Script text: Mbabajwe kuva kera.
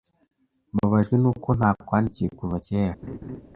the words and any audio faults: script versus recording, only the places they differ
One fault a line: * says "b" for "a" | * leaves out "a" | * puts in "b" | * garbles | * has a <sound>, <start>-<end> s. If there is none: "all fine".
* puts in "nuko ntakwandikiye"
* has a laugh, 3.0-3.4 s